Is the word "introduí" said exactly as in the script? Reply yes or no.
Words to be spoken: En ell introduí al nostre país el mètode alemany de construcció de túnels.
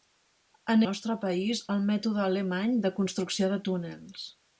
no